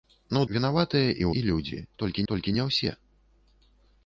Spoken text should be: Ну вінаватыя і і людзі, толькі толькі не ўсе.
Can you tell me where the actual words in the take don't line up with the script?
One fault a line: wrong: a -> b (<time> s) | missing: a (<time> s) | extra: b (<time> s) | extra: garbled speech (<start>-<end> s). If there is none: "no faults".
no faults